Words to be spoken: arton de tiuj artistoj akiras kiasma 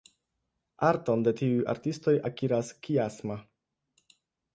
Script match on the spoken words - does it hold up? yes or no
yes